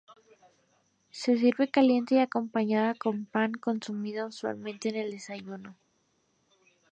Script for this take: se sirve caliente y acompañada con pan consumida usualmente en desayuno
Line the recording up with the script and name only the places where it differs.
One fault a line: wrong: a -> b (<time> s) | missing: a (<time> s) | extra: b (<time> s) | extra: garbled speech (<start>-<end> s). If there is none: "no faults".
extra: el (5.0 s)